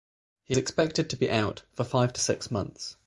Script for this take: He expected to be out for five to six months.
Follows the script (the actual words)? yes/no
yes